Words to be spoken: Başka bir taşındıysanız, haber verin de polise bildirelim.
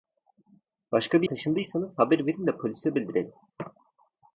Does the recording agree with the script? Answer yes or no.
yes